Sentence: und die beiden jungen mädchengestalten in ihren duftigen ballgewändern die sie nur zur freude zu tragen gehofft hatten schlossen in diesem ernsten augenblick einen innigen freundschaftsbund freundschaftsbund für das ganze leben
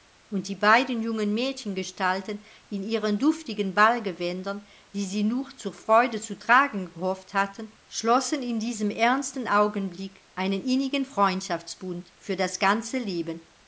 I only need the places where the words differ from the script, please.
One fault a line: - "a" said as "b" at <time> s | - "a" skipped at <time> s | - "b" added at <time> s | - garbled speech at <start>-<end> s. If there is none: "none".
- "freundschaftsbund" skipped at 12.1 s